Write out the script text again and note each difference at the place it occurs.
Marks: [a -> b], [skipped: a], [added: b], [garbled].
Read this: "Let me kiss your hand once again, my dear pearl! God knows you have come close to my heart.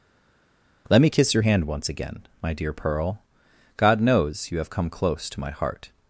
"Let me kiss your hand once again, my dear pearl! God knows you have come close to my heart.